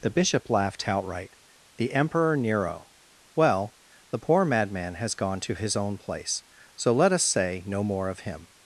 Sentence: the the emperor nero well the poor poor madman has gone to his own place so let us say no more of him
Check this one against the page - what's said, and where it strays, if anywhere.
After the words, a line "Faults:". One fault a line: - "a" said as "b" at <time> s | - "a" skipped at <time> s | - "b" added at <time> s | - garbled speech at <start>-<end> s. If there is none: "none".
the bishop laughed outright the emperor nero well the poor madman has gone to his own place so let us say no more of him
Faults:
- "bishop laughed outright" added at 0.1 s
- "poor" skipped at 4.5 s